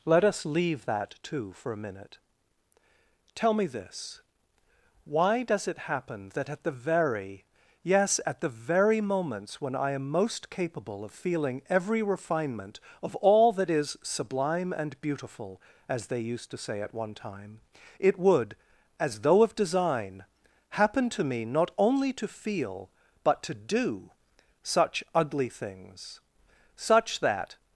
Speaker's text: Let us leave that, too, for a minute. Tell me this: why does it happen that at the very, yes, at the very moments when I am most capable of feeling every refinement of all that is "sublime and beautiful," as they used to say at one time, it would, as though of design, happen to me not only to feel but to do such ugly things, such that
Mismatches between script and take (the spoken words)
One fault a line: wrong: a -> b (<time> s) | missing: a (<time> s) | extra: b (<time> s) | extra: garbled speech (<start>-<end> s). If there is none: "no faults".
no faults